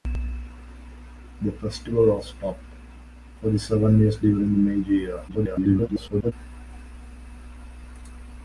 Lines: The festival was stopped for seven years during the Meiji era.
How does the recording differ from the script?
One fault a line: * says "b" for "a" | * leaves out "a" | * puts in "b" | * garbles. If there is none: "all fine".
* garbles